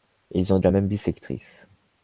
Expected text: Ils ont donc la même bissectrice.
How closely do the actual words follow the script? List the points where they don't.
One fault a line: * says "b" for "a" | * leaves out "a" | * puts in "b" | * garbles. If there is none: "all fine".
* leaves out "donc"